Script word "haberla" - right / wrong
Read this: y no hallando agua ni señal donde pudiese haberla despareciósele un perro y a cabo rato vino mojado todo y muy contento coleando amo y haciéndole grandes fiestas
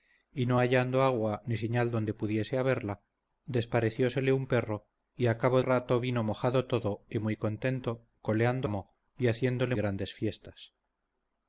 right